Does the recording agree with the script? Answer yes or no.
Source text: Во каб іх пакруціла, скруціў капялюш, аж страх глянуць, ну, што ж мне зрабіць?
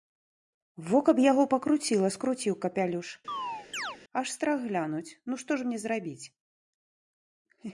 no